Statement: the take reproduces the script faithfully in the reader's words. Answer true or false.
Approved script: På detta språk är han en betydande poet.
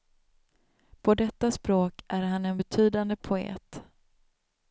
true